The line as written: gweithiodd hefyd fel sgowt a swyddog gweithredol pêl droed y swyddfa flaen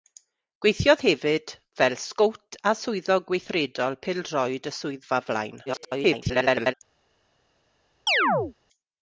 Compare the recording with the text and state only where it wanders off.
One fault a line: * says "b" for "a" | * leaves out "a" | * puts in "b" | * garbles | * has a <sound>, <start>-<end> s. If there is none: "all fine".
* garbles
* has a chirp, 8.1-8.5 s